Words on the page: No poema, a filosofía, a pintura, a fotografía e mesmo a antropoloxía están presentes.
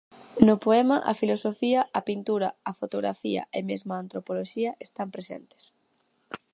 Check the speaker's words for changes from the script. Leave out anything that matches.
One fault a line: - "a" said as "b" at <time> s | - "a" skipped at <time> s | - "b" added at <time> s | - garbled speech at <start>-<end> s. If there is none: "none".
none